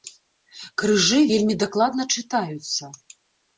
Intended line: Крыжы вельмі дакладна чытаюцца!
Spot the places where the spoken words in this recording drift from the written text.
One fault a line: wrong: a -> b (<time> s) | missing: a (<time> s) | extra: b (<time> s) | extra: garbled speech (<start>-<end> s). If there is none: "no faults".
no faults